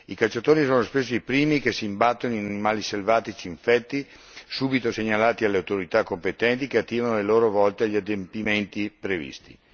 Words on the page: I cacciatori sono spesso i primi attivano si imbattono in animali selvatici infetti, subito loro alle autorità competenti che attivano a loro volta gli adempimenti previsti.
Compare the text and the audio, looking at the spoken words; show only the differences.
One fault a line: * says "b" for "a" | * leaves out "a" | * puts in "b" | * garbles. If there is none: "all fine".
* says "che" for "attivano"
* says "segnalati" for "loro"